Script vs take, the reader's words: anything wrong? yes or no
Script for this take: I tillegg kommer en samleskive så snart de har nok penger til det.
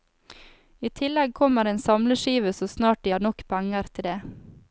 no